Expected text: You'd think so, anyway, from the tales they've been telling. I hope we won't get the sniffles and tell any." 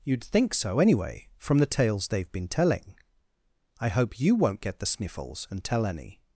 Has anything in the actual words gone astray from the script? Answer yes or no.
yes